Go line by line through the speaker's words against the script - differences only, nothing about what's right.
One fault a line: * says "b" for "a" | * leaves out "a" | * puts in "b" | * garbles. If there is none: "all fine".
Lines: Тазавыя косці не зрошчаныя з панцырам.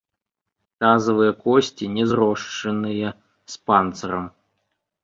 all fine